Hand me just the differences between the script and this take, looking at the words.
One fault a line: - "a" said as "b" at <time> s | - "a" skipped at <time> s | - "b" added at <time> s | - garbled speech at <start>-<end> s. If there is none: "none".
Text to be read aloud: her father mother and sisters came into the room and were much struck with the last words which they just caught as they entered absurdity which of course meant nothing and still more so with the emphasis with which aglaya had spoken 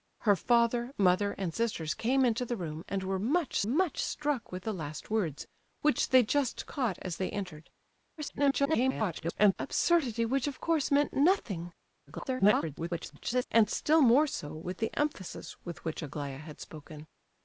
- "much" added at 3.6 s
- garbled speech at 8.2-9.5 s
- garbled speech at 12.1-13.5 s